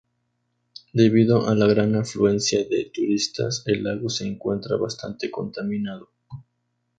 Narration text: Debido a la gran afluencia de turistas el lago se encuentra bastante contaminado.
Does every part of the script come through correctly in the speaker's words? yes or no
yes